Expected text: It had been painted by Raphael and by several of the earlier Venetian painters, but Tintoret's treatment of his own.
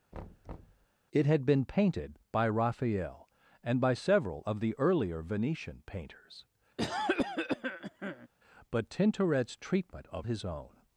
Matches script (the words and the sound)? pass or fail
fail